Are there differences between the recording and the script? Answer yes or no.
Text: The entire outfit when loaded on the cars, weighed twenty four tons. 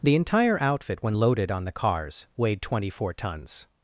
no